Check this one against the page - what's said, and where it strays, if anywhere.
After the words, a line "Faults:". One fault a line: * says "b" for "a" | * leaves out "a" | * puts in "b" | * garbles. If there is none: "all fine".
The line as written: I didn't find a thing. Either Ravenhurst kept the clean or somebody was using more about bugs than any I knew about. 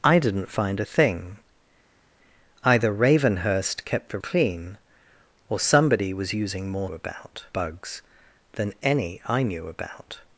I didn't find a thing. Either Ravenhurst kept the clean or somebody was using more about bugs than any I knew about.
Faults:
all fine